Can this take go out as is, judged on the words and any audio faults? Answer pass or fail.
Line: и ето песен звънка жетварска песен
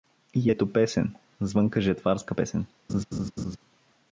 fail